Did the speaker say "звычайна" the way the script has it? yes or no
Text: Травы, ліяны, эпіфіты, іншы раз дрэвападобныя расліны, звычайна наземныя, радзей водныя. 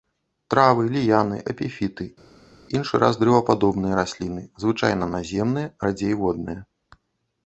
yes